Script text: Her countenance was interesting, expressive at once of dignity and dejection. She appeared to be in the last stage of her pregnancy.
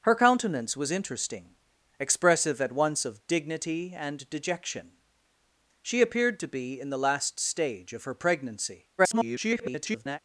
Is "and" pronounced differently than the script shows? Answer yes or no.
no